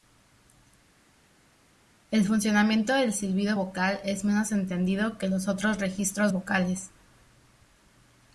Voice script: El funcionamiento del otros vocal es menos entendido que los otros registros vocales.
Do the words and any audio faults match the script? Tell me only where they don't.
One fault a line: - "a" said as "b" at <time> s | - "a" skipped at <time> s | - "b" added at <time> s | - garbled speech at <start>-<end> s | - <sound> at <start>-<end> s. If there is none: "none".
- "otros" said as "silbido" at 3.1 s